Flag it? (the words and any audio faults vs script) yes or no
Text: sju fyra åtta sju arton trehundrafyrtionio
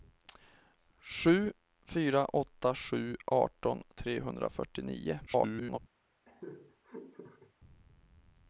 yes